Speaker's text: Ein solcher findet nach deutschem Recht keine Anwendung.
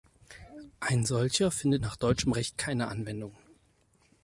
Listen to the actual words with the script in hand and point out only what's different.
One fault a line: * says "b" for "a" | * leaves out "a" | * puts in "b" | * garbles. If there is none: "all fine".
all fine